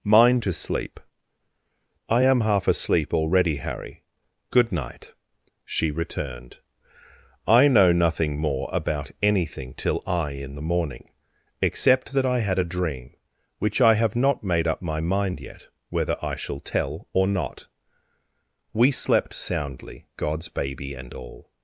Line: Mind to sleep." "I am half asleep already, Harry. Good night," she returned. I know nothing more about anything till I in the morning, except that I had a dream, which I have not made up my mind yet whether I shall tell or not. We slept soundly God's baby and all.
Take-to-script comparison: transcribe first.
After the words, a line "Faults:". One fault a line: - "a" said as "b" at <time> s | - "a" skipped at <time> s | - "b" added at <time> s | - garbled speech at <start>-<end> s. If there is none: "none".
Mind to sleep." "I am half asleep already, Harry. Good night," she returned. I know nothing more about anything till I in the morning, except that I had a dream, which I have not made up my mind yet whether I shall tell or not. We slept soundly God's baby and all.
Faults:
none